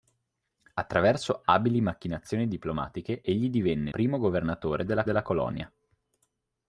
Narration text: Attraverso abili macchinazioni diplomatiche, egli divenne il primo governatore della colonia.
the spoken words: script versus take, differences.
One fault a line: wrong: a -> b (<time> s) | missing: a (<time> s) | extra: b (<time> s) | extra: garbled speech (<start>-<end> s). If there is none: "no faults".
missing: il (3.9 s)
extra: della (5.0 s)